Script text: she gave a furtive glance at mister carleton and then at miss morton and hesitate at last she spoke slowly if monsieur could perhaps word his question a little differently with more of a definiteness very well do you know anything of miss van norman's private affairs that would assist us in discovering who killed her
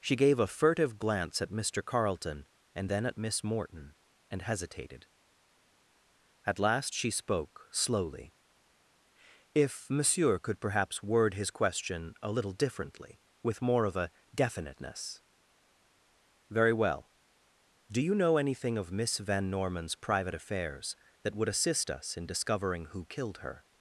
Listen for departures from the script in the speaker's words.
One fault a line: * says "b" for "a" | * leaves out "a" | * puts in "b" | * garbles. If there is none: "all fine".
* says "hesitated" for "hesitate"